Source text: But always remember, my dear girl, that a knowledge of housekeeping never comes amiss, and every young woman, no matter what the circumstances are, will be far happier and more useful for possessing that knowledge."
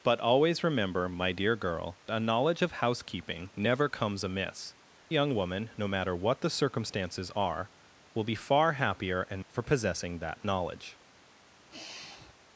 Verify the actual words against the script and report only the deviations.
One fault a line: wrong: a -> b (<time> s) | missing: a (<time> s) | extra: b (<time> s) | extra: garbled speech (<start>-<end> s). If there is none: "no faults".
missing: that (2.0 s)
missing: and every (4.7 s)
missing: more useful (9.4 s)